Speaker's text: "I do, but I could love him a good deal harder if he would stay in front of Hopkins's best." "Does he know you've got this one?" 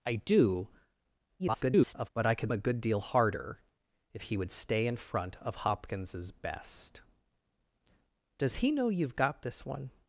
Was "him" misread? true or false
true